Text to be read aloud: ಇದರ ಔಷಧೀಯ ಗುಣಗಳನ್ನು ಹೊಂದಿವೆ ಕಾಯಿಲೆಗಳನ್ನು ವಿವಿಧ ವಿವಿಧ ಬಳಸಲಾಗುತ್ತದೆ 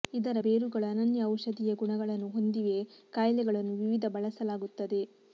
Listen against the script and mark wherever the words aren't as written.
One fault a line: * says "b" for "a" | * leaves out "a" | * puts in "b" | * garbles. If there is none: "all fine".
* puts in "ಬೇರುಗಳು ಅನನ್ಯ"
* leaves out "ವಿವಿಧ"